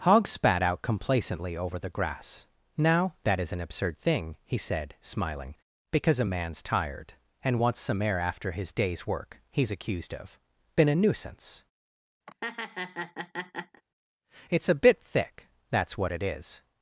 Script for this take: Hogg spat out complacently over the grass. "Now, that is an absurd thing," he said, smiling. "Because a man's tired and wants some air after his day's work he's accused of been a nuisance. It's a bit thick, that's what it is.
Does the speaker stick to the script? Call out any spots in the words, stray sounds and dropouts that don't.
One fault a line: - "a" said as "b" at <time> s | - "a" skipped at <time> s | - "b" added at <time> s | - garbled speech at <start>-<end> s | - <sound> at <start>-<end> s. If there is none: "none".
- laugh at 12.3-13.8 s